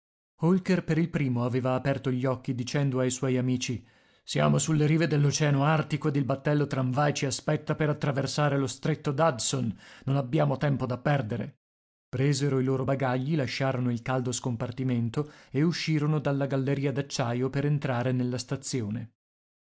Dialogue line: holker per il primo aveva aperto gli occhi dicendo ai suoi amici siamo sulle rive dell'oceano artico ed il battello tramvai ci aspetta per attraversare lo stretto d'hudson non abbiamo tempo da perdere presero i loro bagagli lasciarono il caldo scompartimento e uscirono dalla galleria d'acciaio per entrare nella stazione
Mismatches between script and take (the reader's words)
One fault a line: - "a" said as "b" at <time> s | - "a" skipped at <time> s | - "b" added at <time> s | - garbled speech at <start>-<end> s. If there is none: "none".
none